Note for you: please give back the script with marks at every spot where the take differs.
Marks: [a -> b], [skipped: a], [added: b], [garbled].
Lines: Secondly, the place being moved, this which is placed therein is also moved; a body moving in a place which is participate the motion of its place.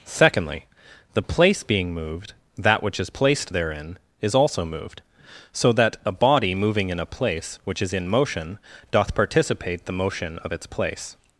Secondly, the place being moved, [this -> that] which is placed therein is also moved; [added: so that] a body moving in a place which is [added: in motion doth] participate the motion of its place.